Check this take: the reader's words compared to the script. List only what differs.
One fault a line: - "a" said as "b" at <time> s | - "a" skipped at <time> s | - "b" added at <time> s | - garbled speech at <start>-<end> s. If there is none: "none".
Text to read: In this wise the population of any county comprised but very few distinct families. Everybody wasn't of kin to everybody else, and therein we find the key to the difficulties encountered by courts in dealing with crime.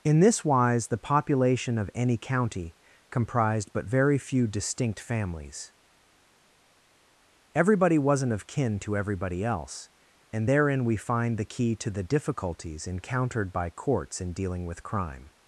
none